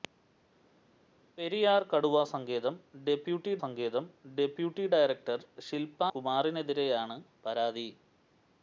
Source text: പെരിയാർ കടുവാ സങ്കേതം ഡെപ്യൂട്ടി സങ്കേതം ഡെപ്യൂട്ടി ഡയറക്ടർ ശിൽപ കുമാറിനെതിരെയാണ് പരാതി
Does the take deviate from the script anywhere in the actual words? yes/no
no